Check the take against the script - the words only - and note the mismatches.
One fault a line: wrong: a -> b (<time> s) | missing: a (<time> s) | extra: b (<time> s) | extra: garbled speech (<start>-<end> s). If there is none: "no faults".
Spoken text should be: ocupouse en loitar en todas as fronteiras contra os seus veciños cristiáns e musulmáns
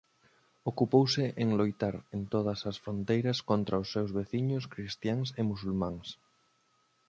no faults